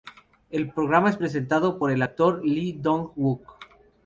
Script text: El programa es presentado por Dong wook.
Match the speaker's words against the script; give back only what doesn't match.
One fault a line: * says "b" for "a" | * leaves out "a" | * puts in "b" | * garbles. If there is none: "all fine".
* puts in "el actor Lee"